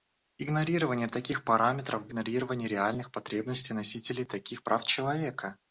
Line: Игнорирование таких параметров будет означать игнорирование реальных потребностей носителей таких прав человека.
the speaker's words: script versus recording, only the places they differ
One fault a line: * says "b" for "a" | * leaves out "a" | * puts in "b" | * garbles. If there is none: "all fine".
* leaves out "будет означать"